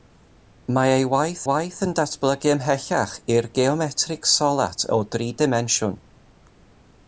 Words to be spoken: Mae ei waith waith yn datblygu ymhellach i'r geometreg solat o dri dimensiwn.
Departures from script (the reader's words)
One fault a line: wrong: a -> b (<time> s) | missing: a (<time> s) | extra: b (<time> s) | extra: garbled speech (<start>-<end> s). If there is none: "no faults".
no faults